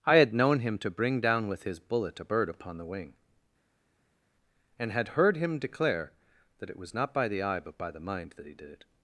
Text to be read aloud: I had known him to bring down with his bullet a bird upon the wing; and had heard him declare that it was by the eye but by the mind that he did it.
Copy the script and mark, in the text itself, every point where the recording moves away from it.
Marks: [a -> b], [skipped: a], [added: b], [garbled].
I had known him to bring down with his bullet a bird upon the wing; and had heard him declare that it was [added: not] by the eye but by the mind that he did it.